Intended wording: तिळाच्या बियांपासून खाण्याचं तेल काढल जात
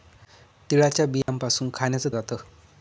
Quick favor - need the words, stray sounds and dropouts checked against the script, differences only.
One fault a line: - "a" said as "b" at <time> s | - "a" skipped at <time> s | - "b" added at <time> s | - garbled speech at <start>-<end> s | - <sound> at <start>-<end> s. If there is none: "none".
- dropout at 1.2-1.3 s
- "तेल काढल" skipped at 2.1 s